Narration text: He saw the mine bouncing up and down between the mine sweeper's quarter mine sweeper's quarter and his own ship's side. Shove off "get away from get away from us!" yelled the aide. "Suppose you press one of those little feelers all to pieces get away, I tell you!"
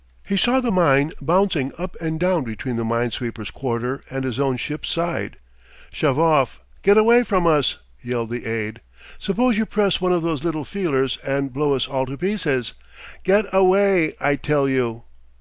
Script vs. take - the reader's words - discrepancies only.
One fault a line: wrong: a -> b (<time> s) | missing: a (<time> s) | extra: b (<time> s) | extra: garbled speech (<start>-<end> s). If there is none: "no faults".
missing: mine sweeper's quarter (4.0 s)
missing: get away from (7.5 s)
extra: and blow us (11.2 s)